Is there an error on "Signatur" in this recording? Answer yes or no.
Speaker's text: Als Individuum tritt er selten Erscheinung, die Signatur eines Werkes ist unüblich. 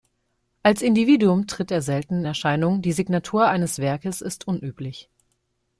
no